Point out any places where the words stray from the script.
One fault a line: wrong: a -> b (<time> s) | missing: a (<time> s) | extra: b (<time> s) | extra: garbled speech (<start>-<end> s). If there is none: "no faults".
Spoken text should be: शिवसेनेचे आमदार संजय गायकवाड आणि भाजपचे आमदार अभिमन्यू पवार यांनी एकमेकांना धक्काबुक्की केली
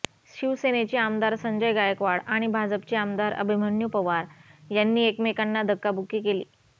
no faults